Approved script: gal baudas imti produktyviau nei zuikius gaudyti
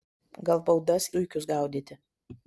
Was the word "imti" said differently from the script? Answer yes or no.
yes